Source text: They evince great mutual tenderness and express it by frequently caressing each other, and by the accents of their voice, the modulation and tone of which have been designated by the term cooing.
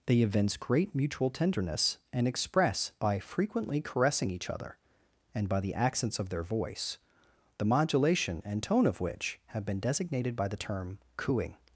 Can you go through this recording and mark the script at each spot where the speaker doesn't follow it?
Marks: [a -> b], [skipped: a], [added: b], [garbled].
They evince great mutual tenderness and express [skipped: it] by frequently caressing each other, and by the accents of their voice, the modulation and tone of which have been designated by the term cooing.